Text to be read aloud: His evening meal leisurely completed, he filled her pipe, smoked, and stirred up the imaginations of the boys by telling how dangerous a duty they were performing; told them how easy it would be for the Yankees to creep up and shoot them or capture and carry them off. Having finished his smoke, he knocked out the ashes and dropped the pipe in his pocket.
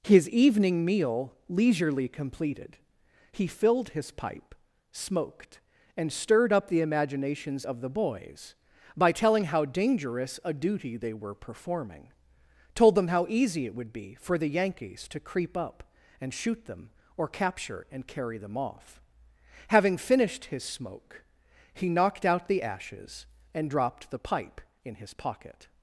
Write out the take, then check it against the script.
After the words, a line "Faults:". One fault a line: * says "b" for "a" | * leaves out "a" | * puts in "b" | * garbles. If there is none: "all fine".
His evening meal leisurely completed, he filled his pipe, smoked, and stirred up the imaginations of the boys by telling how dangerous a duty they were performing; told them how easy it would be for the Yankees to creep up and shoot them or capture and carry them off. Having finished his smoke, he knocked out the ashes and dropped the pipe in his pocket.
Faults:
* says "his" for "her"